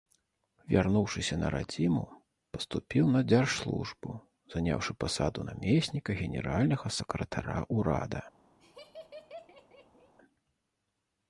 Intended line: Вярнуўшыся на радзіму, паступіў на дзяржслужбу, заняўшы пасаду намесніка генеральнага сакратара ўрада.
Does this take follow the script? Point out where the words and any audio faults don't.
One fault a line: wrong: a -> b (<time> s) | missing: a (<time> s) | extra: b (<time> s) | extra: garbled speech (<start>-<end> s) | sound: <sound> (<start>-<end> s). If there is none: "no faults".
sound: laugh (8.6-10.1 s)